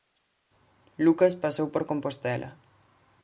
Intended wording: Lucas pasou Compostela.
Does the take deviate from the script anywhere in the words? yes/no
yes